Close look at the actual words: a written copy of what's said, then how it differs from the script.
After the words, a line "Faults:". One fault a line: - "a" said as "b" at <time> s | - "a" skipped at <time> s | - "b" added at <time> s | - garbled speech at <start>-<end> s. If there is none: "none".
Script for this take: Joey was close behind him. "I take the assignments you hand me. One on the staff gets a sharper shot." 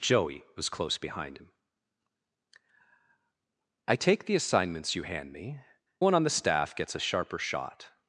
Joey was close behind him. "I take the assignments you hand me. One on the staff gets a sharper shot."
Faults:
none